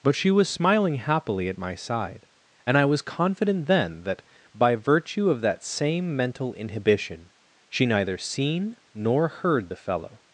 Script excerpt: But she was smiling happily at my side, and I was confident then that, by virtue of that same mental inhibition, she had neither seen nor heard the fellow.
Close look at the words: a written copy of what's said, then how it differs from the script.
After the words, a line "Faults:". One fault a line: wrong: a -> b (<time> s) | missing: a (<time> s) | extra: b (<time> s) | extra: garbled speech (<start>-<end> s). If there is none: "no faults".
But she was smiling happily at my side, and I was confident then that, by virtue of that same mental inhibition, she neither seen nor heard the fellow.
Faults:
missing: had (7.8 s)